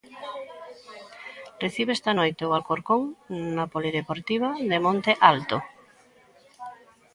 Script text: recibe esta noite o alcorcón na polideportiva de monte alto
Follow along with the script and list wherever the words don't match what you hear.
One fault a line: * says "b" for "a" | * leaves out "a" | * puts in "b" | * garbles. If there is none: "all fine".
all fine